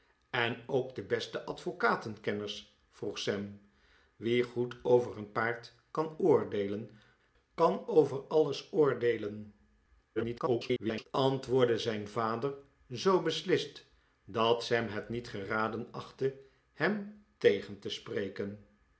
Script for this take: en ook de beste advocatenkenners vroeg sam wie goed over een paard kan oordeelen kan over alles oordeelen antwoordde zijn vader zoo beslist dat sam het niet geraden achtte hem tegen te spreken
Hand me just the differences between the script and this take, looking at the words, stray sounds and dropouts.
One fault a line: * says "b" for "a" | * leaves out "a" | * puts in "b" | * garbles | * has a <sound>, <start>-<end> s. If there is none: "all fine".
* garbles